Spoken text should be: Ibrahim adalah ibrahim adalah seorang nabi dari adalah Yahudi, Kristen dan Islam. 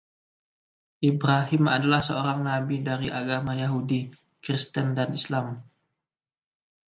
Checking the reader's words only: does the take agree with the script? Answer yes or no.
no